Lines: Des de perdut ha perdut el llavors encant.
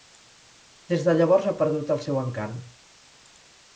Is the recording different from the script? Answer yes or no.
yes